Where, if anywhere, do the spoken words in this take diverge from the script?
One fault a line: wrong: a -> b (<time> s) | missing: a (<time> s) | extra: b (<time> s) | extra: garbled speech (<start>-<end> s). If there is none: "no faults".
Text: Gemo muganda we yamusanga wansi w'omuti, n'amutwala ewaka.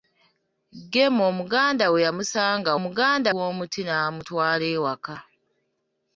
wrong: wansi -> muganda (2.8 s)